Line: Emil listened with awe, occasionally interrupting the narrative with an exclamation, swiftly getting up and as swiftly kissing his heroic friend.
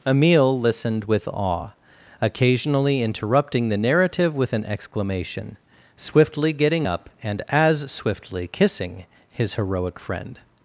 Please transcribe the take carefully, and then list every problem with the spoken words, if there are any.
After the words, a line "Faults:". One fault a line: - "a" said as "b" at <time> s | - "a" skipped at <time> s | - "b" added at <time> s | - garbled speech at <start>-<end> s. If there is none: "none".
Emil listened with awe, occasionally interrupting the narrative with an exclamation, swiftly getting up and as swiftly kissing his heroic friend.
Faults:
none